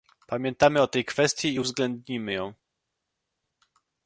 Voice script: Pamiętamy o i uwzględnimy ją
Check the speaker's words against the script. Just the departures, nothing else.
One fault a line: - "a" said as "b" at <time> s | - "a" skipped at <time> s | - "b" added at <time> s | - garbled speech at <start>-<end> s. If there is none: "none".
- "tej kwestii" added at 0.9 s